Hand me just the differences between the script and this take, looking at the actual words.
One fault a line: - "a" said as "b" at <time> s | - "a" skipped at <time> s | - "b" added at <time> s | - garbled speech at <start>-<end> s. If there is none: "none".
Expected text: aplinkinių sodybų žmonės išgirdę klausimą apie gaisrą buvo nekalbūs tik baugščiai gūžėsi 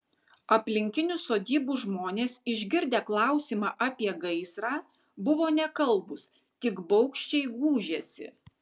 none